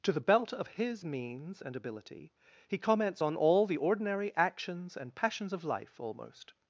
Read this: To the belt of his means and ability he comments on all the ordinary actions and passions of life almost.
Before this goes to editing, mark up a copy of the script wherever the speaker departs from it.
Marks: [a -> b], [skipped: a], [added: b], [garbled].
To the belt of his means and ability he comments on all the ordinary actions and passions of life almost.